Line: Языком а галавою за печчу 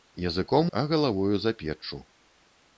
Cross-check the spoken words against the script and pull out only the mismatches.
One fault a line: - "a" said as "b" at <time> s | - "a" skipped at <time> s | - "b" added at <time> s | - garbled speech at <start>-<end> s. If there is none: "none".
none